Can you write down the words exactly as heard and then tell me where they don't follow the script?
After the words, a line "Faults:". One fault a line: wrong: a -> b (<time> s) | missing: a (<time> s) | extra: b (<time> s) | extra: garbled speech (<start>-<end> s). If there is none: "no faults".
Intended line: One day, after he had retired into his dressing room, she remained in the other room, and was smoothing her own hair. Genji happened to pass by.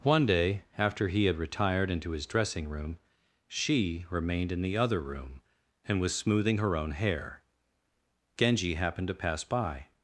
One day, after he had retired into his dressing room, she remained in the other room, and was smoothing her own hair. Genji happened to pass by.
Faults:
no faults